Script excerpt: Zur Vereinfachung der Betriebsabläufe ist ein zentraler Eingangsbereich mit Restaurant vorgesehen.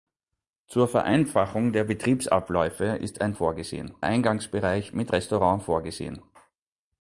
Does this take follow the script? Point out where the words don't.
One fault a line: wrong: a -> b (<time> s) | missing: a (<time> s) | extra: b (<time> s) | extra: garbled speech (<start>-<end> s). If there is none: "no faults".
wrong: zentraler -> vorgesehen (3.3 s)